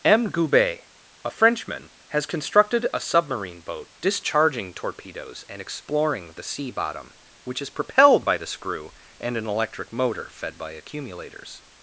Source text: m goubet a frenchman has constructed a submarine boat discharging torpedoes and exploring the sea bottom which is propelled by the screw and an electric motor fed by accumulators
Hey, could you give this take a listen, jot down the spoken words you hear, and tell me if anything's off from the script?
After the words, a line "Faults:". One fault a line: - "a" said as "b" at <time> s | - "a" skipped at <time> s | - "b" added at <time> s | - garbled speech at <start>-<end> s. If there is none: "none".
m goubet a frenchman has constructed a submarine boat discharging torpedoes and exploring the sea bottom which is propelled by the screw and an electric motor fed by accumulators
Faults:
none